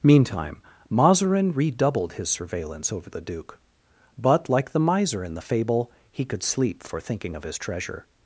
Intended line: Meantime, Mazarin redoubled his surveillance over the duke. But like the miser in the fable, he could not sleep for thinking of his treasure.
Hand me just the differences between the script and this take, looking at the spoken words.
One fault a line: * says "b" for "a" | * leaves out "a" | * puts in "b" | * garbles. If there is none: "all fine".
* leaves out "not"